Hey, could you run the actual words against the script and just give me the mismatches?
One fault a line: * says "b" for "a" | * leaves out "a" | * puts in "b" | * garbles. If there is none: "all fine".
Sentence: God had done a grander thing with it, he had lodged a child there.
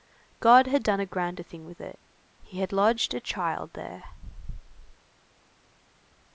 all fine